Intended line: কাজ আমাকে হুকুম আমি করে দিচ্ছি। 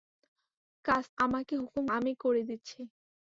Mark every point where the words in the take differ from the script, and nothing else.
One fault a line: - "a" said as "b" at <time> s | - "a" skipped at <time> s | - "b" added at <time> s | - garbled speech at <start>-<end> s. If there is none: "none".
none